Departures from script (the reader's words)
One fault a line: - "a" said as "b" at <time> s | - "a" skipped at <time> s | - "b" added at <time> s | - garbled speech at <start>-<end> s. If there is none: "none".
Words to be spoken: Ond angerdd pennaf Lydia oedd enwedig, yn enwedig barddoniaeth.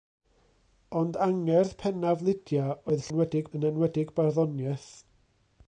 none